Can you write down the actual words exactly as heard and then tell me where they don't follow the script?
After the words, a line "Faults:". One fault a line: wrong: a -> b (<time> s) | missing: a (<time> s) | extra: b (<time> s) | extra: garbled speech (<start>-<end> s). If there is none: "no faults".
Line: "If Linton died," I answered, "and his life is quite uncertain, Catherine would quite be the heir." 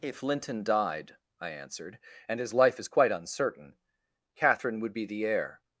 "If Linton died," I answered, "and his life is quite uncertain, Catherine would be the heir."
Faults:
missing: quite (4.9 s)